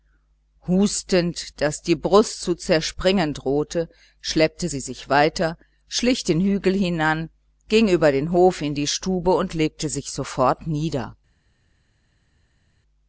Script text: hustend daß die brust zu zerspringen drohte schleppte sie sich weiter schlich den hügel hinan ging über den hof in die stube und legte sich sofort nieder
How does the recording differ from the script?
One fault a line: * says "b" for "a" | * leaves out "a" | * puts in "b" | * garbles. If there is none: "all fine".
all fine